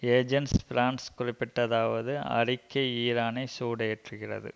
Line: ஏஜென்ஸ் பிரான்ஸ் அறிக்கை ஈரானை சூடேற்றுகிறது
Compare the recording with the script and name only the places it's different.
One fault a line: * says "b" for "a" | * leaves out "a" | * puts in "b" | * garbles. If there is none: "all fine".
* puts in "குறிப்பிட்டதாவது"